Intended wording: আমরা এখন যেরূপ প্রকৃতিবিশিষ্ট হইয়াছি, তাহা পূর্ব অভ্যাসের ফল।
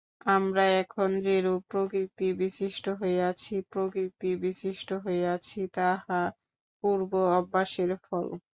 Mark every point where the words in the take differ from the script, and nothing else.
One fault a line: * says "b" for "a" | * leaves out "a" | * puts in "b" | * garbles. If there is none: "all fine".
* puts in "প্রকৃতিবিশিষ্ট হইয়াছি"